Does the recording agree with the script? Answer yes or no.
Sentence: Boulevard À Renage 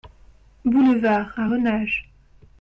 yes